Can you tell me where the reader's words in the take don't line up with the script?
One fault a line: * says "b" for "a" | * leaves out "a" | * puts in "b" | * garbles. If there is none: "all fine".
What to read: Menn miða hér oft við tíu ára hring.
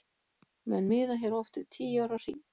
all fine